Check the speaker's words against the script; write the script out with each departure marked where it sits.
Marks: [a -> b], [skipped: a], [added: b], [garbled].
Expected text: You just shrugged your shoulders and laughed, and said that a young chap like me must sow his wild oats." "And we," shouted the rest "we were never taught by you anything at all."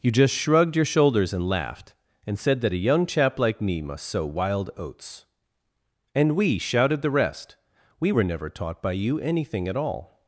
You just shrugged your shoulders and laughed, and said that a young chap like me must sow [skipped: his] wild oats." "And we," shouted the rest "we were never taught by you anything at all."